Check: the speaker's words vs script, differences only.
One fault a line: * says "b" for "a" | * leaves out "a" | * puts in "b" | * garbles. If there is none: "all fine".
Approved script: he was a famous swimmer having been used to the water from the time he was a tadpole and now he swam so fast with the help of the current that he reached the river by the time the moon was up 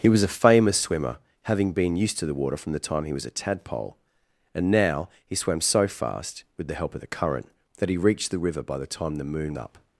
* leaves out "was"